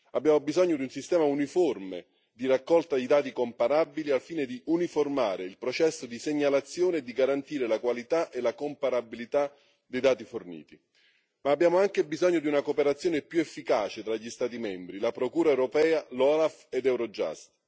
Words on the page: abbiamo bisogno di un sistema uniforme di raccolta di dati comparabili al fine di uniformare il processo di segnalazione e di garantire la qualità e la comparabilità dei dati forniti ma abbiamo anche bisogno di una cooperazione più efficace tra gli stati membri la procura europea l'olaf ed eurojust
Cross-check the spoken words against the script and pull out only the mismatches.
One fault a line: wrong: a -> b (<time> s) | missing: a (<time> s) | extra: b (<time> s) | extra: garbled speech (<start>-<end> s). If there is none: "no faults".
no faults